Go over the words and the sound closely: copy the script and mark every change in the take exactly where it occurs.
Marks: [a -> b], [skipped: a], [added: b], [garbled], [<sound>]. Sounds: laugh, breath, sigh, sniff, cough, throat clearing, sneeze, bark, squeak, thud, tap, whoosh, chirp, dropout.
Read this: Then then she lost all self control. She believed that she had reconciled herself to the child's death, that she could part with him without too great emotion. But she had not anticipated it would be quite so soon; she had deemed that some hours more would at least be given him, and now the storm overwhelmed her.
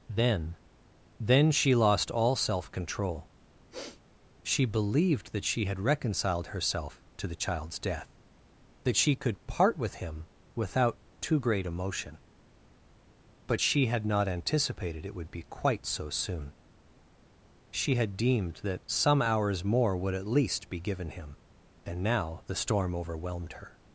Then then she lost all self control. [sniff] She believed that she had reconciled herself to the child's death, that she could part with him without too great emotion. But she had not anticipated it would be quite so soon; she had deemed that some hours more would at least be given him, and now the storm overwhelmed her.